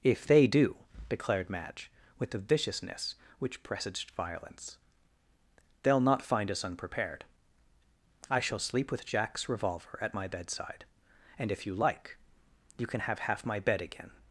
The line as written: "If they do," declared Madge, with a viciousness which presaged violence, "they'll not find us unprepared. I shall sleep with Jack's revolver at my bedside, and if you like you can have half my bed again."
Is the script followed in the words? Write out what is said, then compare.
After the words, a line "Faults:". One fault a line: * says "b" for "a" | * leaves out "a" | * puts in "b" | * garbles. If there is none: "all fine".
"If they do," declared Madge, with a viciousness which presaged violence, "they'll not find us unprepared. I shall sleep with Jack's revolver at my bedside, and if you like you can have half my bed again."
Faults:
all fine